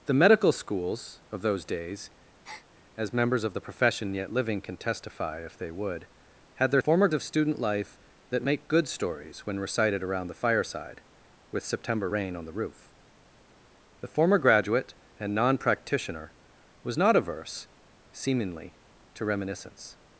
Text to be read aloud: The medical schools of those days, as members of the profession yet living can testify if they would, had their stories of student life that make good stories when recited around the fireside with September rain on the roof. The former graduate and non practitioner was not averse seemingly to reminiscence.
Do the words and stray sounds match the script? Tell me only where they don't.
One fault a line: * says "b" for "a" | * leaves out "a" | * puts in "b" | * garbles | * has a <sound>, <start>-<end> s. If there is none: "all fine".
* has a breath, 2.4-2.7 s
* says "former" for "stories"